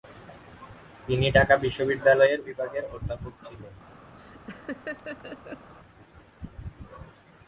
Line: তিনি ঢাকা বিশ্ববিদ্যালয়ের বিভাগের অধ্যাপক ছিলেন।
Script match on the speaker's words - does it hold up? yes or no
yes